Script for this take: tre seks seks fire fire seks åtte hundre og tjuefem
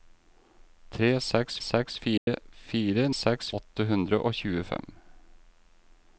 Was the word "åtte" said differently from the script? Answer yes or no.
no